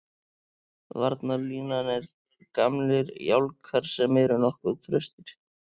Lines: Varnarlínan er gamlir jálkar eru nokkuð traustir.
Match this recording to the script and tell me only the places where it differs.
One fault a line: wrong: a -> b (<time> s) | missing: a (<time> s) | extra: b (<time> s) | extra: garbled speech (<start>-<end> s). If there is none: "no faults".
extra: sem (4.0 s)